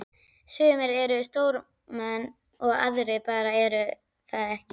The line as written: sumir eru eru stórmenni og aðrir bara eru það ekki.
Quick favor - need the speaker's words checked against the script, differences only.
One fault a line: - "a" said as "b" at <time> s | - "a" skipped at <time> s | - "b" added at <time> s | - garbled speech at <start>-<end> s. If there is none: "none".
- "eru" skipped at 1.2 s